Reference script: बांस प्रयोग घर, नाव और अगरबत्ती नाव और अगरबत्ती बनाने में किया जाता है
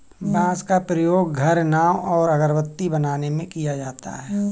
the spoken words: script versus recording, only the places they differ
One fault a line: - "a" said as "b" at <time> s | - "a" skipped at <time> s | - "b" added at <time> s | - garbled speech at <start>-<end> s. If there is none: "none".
- "का" added at 0.6 s
- "नाव और अगरबत्ती" skipped at 2.9 s